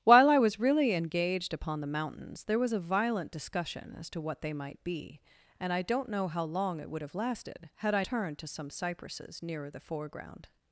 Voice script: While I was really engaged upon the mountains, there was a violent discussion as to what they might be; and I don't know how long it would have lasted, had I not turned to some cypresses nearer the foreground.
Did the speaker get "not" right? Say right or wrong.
wrong